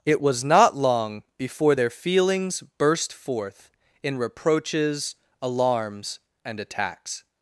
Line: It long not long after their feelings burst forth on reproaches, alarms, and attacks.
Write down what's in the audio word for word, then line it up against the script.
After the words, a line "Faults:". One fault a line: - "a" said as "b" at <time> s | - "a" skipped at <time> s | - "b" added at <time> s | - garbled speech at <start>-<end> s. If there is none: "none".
It was not long before their feelings burst forth in reproaches, alarms, and attacks.
Faults:
- "long" said as "was" at 0.2 s
- "after" said as "before" at 1.4 s
- "on" said as "in" at 4.0 s